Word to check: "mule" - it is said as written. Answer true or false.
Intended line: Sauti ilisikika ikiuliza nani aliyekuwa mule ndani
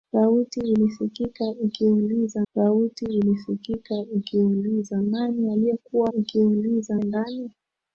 false